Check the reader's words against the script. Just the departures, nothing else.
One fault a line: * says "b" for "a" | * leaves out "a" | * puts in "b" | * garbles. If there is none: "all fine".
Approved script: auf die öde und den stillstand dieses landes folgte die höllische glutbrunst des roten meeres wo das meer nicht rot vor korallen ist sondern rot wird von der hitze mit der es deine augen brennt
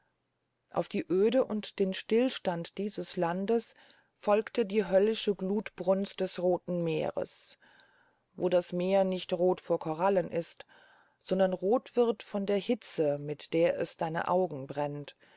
all fine